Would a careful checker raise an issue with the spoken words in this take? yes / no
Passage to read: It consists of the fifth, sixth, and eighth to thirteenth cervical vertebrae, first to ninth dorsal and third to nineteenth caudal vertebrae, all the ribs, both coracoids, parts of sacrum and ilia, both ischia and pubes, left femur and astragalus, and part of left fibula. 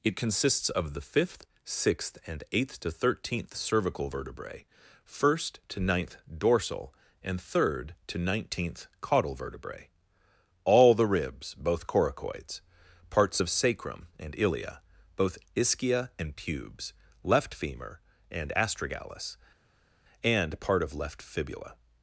no